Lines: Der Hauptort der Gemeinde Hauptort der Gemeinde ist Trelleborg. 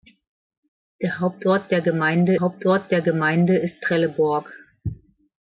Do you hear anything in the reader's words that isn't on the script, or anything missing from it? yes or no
no